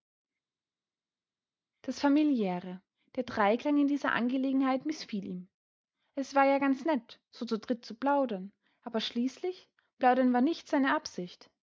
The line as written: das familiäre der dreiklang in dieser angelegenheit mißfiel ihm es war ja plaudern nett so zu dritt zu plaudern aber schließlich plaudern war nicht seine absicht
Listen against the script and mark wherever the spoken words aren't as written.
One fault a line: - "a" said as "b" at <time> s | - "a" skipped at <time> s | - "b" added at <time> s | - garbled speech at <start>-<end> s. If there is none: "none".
- "plaudern" said as "ganz" at 6.6 s